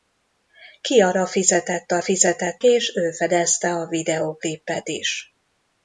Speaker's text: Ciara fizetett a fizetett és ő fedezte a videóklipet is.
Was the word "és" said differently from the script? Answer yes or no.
no